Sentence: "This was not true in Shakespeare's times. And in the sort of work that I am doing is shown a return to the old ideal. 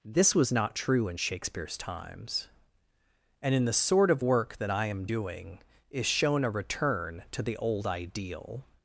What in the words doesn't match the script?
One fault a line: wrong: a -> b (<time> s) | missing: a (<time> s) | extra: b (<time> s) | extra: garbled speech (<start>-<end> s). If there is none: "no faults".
no faults